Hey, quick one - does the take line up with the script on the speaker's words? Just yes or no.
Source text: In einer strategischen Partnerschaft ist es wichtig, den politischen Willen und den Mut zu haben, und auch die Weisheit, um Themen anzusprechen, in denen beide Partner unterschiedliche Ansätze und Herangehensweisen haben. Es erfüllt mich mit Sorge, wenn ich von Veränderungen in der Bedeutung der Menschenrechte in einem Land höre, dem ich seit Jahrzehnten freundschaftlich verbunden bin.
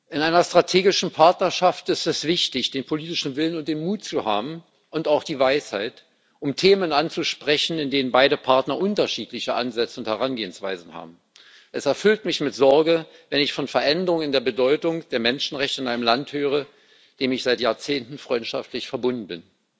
yes